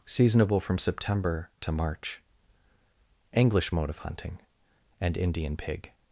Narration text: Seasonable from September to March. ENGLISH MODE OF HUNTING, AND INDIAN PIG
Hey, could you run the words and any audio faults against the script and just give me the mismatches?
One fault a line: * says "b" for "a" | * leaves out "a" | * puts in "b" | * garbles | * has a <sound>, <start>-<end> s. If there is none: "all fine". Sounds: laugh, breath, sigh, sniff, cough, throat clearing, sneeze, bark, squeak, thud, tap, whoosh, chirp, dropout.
all fine